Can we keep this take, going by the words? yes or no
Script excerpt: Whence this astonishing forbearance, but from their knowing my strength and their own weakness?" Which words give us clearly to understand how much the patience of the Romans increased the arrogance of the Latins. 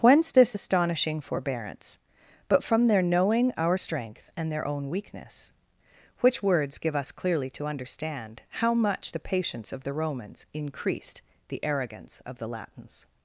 no